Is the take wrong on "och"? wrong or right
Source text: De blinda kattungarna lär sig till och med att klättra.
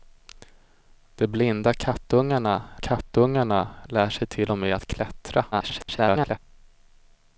right